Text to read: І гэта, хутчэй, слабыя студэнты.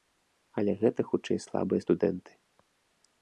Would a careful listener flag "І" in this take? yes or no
yes